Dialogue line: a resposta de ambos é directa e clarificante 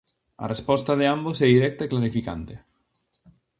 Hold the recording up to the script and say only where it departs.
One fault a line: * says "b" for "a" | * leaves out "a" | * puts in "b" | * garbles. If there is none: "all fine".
all fine